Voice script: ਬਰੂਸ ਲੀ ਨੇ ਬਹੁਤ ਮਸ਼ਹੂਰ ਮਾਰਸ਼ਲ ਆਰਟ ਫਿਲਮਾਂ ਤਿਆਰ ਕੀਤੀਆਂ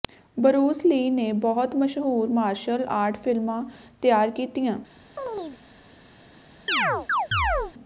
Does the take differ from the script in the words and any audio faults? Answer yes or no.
yes